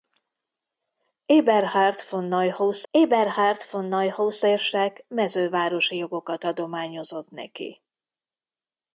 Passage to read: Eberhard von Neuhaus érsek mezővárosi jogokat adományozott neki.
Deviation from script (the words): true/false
true